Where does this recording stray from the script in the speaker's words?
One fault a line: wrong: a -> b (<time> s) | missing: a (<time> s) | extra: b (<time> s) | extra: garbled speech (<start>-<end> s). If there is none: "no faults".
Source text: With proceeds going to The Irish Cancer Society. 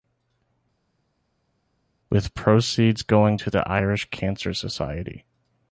no faults